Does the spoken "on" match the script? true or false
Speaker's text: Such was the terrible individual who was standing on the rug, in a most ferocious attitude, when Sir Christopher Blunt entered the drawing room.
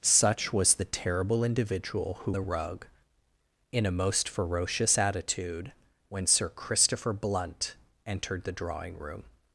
false